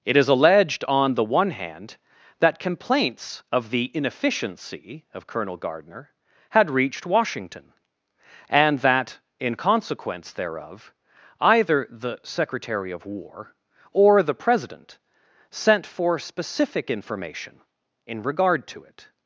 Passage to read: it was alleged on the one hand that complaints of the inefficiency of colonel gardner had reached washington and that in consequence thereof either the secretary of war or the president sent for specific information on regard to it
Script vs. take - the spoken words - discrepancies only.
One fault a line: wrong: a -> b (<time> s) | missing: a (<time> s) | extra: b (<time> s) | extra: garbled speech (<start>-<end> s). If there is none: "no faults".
wrong: was -> is (0.2 s)
wrong: on -> in (18.0 s)